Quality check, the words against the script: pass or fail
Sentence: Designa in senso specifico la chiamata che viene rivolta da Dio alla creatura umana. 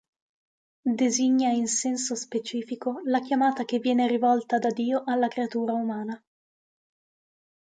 pass